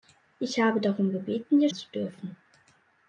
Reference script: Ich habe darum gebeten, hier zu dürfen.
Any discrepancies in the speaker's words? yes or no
no